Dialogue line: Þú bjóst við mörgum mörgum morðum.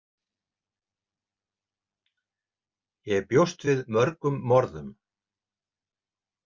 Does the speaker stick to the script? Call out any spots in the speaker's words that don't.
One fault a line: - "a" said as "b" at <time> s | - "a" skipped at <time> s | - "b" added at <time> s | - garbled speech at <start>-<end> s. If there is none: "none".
- "Þú" said as "Ég" at 3.1 s
- "mörgum" skipped at 4.4 s